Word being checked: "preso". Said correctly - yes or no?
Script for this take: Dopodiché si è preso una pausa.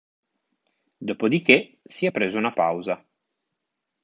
yes